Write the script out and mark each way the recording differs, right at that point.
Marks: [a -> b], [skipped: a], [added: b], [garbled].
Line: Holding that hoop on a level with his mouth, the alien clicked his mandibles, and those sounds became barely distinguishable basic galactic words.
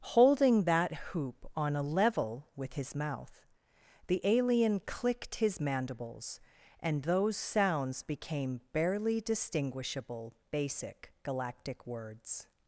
Holding that hoop on a level with his mouth, the alien clicked his mandibles, and those sounds became barely distinguishable basic galactic words.